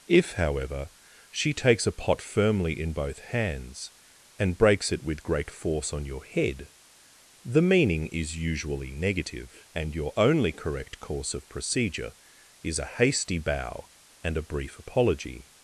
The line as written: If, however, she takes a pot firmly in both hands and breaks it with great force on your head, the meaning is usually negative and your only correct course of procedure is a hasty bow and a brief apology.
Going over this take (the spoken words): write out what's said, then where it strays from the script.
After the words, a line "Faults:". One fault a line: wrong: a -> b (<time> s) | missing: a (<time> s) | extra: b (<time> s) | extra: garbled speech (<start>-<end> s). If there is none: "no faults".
If, however, she takes a pot firmly in both hands and breaks it with great force on your head, the meaning is usually negative and your only correct course of procedure is a hasty bow and a brief apology.
Faults:
no faults